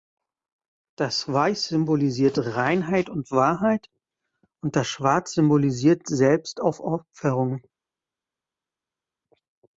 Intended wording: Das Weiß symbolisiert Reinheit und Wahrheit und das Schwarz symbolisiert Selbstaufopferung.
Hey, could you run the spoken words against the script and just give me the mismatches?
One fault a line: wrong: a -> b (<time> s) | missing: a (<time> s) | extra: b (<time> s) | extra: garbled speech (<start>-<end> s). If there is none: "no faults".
no faults